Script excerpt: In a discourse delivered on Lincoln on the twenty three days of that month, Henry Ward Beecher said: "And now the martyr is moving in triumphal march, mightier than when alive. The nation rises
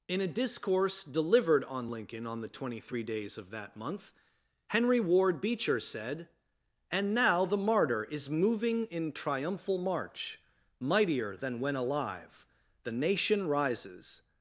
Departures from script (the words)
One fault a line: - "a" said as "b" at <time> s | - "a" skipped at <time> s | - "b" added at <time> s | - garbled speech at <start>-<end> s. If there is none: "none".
none